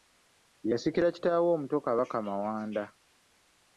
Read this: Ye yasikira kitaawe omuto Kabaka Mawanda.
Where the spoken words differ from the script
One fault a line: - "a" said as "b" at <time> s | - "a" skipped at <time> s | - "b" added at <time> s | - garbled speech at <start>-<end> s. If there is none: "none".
none